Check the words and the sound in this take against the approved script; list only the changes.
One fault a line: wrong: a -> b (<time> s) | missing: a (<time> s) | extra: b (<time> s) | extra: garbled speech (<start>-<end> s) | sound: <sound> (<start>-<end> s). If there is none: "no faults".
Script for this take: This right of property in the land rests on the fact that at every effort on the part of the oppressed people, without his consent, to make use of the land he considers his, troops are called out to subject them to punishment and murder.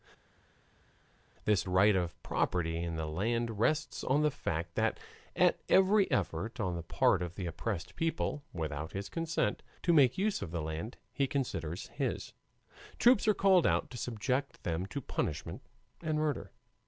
no faults